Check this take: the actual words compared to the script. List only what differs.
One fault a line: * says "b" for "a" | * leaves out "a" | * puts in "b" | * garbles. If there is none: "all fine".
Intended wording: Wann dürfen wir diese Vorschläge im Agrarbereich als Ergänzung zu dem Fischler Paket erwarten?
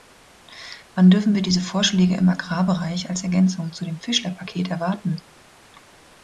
all fine